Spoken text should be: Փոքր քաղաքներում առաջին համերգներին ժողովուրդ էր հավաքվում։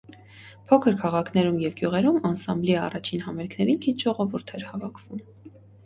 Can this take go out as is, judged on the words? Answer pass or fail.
fail